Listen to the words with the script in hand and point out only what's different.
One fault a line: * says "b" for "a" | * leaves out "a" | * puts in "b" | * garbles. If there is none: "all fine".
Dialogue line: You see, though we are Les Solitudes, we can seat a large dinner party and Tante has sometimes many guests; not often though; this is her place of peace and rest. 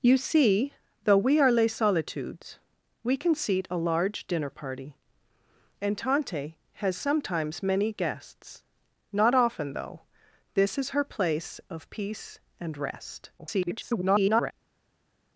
* garbles